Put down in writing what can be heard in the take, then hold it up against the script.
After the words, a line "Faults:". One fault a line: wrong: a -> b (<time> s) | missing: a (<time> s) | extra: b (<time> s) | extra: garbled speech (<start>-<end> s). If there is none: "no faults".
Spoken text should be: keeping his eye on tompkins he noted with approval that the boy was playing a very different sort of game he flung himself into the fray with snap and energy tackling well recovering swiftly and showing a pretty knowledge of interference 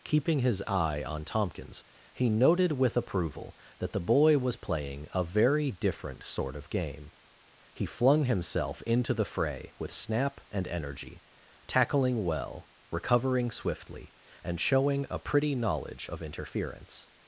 keeping his eye on tompkins he noted with approval that the boy was playing a very different sort of game he flung himself into the fray with snap and energy tackling well recovering swiftly and showing a pretty knowledge of interference
Faults:
no faults